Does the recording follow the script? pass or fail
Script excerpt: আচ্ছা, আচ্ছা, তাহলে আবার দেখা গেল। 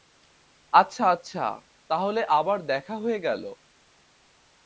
fail